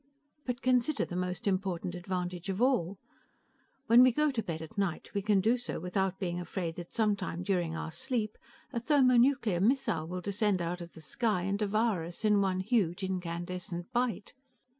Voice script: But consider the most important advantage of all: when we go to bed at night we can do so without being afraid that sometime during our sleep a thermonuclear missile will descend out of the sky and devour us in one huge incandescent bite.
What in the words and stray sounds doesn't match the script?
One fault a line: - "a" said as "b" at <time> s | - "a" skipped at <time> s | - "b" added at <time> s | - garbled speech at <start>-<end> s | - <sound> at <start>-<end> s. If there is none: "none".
none